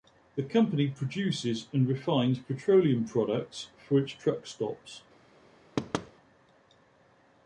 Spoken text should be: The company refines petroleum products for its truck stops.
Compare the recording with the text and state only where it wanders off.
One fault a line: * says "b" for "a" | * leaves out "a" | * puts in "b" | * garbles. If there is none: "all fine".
* puts in "produces and"